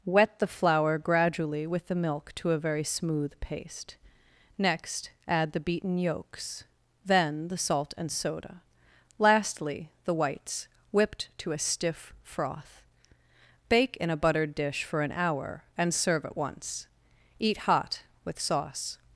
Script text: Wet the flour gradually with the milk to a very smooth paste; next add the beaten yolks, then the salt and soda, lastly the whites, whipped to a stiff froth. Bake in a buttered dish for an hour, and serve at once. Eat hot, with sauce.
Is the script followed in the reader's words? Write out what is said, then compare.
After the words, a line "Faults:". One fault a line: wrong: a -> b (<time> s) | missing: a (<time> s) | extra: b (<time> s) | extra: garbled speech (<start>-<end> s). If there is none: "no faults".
Wet the flour gradually with the milk to a very smooth paste; next add the beaten yolks, then the salt and soda, lastly the whites, whipped to a stiff froth. Bake in a buttered dish for an hour, and serve at once. Eat hot, with sauce.
Faults:
no faults